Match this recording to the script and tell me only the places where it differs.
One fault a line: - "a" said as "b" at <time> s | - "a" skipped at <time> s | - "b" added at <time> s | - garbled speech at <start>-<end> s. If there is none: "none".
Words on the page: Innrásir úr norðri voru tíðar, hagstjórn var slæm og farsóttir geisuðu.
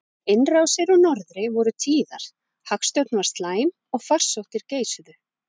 none